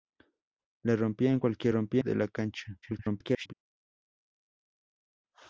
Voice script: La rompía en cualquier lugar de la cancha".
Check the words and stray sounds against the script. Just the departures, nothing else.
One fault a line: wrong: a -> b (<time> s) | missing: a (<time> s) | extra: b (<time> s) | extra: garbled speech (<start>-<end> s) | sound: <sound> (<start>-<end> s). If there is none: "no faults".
wrong: lugar -> rompía (1.7 s)
extra: garbled speech (2.8-3.5 s)